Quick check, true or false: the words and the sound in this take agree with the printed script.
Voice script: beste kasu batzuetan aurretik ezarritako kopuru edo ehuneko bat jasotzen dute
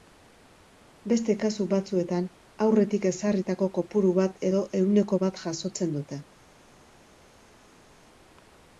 false